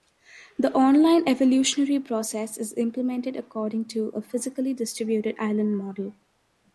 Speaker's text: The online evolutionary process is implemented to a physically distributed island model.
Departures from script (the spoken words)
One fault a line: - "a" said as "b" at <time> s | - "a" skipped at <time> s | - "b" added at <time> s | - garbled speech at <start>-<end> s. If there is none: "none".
- "according" added at 3.4 s